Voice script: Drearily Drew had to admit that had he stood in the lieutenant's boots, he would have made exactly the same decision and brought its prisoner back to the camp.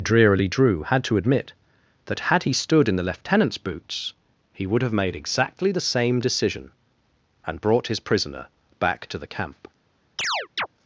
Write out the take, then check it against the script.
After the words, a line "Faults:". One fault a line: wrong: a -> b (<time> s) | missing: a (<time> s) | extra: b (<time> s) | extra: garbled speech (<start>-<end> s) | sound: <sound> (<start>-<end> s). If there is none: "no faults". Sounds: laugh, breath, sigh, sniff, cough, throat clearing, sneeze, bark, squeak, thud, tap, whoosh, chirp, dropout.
Drearily Drew had to admit that had he stood in the lieutenant's boots, he would have made exactly the same decision and brought his prisoner back to the camp.
Faults:
wrong: its -> his (7.9 s)
sound: chirp (10.2-10.7 s)